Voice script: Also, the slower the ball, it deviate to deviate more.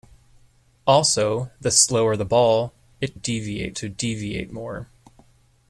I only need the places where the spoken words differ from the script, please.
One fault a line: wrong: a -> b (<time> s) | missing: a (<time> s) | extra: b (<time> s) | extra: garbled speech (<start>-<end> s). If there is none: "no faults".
no faults